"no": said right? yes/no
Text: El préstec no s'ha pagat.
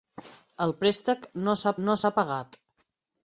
yes